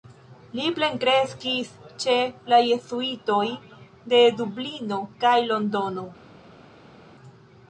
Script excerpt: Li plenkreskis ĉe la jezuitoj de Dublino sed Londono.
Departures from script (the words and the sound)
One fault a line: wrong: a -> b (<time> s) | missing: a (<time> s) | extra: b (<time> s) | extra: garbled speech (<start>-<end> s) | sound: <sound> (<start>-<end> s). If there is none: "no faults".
wrong: sed -> kaj (5.2 s)